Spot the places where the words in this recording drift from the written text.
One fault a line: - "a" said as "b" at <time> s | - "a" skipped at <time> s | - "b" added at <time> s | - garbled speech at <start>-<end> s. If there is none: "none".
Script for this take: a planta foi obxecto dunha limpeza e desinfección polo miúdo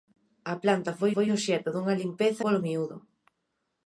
- "foi" added at 1.1 s
- "e desinfección" skipped at 2.4 s